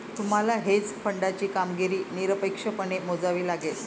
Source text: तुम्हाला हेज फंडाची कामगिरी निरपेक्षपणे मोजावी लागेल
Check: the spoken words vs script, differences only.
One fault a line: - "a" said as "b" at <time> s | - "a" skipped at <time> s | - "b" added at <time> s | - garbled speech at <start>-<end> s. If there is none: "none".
none